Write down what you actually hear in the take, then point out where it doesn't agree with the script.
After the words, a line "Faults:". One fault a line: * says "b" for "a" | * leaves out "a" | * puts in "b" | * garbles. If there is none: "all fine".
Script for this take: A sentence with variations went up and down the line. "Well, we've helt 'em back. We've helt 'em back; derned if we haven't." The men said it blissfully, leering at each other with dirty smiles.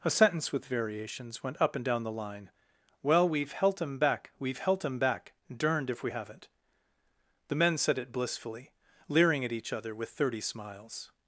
A sentence with variations went up and down the line. "Well, we've helt 'em back. We've helt 'em back; derned if we haven't." The men said it blissfully, leering at each other with thirty smiles.
Faults:
* says "thirty" for "dirty"